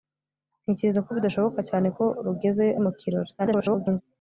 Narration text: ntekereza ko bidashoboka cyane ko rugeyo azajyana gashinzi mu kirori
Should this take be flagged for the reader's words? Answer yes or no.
yes